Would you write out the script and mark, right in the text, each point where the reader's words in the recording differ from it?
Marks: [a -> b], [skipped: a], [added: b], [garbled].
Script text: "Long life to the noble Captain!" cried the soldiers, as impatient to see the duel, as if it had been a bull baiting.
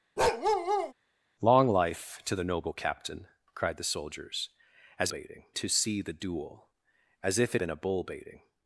"Long life to the noble Captain!" cried the soldiers, as [impatient -> baiting] to see the duel, as if it [skipped: had] been a bull baiting.